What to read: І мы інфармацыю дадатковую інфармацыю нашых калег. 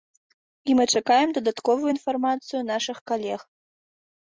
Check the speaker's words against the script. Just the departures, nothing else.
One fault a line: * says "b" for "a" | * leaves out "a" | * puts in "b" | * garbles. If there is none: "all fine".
* says "чакаем" for "інфармацыю"